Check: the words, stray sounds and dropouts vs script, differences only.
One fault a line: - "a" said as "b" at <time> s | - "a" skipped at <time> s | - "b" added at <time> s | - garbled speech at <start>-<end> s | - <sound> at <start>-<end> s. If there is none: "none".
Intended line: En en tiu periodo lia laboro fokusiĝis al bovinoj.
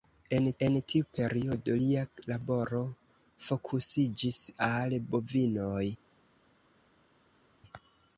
none